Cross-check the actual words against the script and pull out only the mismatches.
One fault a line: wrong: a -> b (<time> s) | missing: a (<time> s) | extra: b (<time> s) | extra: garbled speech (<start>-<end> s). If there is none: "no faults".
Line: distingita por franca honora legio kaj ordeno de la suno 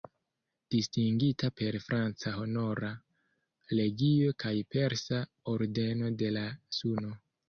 wrong: por -> per (1.6 s)
extra: persa (4.8 s)